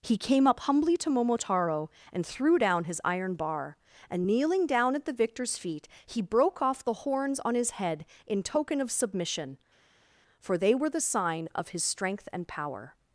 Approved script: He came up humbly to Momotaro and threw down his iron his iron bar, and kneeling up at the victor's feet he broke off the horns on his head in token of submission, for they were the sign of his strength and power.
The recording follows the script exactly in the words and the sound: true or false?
false